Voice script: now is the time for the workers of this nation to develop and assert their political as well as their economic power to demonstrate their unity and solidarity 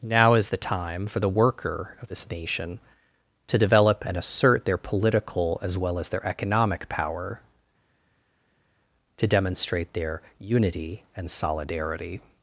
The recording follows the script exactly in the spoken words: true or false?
false